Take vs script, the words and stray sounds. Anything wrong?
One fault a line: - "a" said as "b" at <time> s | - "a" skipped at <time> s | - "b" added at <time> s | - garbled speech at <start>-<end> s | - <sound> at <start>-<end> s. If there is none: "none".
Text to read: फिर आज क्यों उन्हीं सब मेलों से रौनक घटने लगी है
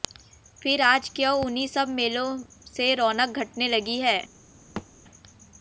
- thud at 4.8-4.9 s